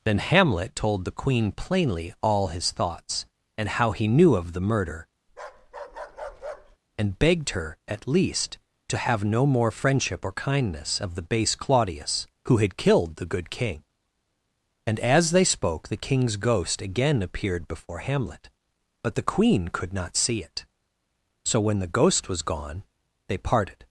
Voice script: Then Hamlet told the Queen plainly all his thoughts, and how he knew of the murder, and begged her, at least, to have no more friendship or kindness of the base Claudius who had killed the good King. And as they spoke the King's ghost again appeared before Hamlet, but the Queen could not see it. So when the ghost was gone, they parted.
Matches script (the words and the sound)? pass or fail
fail